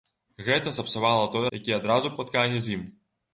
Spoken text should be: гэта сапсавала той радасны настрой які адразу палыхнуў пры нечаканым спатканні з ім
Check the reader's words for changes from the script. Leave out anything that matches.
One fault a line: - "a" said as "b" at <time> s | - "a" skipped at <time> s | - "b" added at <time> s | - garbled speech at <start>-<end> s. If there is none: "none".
- "радасны настрой" skipped at 1.4 s
- "палыхнуў пры нечаканым" skipped at 2.2 s